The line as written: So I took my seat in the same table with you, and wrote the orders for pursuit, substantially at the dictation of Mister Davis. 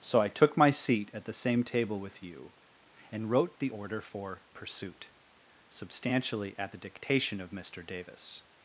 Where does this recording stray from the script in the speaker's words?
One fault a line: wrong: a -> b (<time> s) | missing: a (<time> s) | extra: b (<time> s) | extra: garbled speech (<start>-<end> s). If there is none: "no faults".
wrong: in -> at (1.1 s)
wrong: orders -> order (3.7 s)